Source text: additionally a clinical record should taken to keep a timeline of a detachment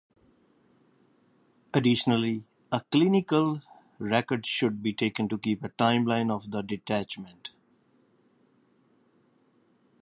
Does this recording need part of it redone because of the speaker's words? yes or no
yes